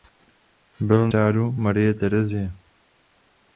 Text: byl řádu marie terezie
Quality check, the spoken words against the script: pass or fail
pass